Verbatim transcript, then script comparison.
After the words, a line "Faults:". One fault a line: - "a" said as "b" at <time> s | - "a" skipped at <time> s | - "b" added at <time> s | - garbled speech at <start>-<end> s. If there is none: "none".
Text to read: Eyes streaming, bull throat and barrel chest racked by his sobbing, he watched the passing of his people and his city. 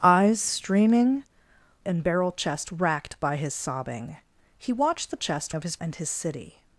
Eyes streaming, and barrel chest racked by his sobbing, he watched the chest of his and his city.
Faults:
- "bull throat" skipped at 1.2 s
- "passing" said as "chest" at 5.2 s
- "people" skipped at 5.8 s